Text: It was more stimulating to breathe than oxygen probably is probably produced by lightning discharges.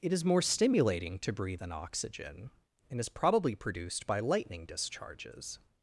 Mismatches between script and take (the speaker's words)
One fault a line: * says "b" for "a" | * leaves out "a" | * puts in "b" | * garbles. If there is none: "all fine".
* says "is" for "was"
* says "and" for "probably"